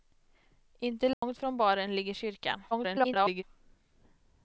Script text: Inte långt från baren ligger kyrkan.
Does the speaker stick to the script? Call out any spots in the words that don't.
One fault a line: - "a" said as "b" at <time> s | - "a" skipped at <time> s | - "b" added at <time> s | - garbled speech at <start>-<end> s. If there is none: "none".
- garbled speech at 2.7-3.4 s